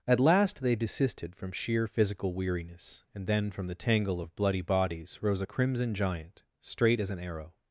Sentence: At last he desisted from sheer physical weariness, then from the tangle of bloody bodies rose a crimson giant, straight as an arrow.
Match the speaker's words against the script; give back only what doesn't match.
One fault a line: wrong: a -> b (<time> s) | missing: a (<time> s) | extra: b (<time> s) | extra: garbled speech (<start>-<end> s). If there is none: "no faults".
wrong: he -> they (0.6 s)
extra: and (3.1 s)